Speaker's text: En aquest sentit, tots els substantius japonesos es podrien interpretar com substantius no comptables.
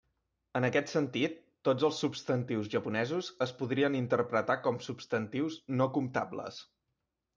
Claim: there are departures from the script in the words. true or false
false